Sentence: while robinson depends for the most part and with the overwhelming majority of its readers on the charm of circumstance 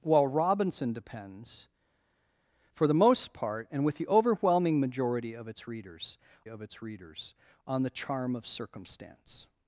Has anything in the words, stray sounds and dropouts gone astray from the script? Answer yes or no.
yes